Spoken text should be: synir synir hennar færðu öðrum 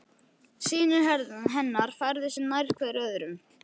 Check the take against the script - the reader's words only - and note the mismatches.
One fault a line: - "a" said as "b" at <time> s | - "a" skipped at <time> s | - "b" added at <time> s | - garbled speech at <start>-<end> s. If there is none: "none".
- "synir" skipped at 1.1 s
- "sig nær hver" added at 2.4 s